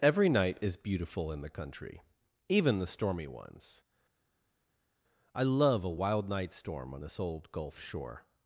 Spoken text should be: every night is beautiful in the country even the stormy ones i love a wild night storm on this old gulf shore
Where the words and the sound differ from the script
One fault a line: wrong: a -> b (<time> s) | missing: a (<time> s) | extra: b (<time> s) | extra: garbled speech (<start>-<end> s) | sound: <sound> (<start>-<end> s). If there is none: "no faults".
no faults